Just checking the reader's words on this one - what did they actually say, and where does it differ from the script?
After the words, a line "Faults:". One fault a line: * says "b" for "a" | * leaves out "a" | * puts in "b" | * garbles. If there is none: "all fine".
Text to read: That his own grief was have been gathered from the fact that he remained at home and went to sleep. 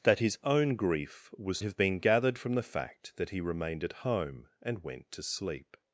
That his own grief was have been gathered from the fact that he remained at home and went to sleep.
Faults:
all fine